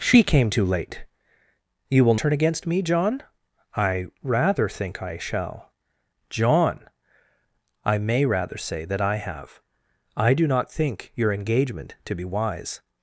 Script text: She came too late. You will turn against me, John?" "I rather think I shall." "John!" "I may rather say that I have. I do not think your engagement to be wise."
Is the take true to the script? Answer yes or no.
yes